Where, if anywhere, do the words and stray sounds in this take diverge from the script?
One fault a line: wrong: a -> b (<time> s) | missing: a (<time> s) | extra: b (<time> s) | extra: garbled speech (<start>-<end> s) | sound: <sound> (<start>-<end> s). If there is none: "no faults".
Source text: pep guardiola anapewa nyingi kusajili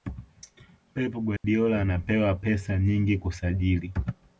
sound: dropout (1.4-1.4 s)
extra: pesa (2.3 s)